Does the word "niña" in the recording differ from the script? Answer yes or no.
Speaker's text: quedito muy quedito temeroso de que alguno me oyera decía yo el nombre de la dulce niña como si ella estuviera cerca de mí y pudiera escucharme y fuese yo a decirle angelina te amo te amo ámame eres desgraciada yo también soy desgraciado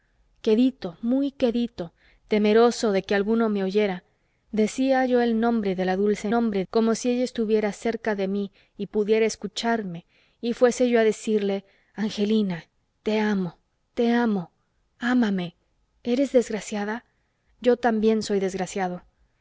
yes